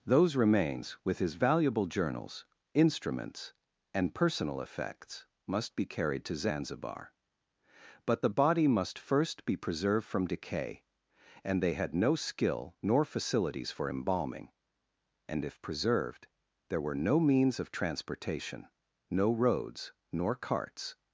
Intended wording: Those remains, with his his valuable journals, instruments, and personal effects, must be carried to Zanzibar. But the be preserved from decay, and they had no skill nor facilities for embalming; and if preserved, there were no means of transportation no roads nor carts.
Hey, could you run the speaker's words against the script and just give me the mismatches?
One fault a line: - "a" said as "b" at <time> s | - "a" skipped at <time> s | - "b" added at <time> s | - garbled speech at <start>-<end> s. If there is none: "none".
- "his" skipped at 1.4 s
- "body must first" added at 8.3 s